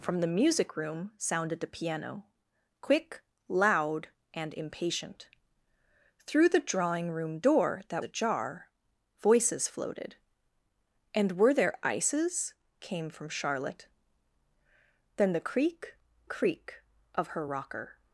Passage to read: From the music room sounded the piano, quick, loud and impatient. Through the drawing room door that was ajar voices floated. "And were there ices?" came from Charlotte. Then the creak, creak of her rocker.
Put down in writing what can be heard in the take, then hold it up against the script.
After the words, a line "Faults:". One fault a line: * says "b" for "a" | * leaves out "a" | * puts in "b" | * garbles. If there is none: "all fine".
From the music room sounded the piano, quick, loud and impatient. Through the drawing room door that ajar voices floated. "And were there ices?" came from Charlotte. Then the creak, creak of her rocker.
Faults:
* leaves out "was"